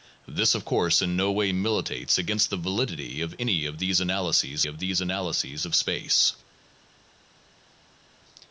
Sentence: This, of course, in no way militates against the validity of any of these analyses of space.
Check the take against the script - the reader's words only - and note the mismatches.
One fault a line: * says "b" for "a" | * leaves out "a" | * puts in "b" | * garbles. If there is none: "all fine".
* puts in "these analyses of"